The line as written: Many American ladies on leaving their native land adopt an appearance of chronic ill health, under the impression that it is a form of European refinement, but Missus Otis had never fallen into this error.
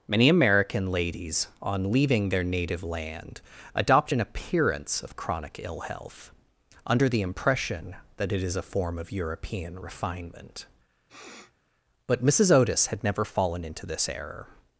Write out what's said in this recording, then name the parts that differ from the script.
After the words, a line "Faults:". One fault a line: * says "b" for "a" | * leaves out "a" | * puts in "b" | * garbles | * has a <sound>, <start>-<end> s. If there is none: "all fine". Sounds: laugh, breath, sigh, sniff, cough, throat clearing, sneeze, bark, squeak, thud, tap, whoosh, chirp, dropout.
Many American ladies on leaving their native land adopt an appearance of chronic ill health, under the impression that it is a form of European refinement, but Missus Otis had never fallen into this error.
Faults:
* has a sniff, 11.1-11.5 s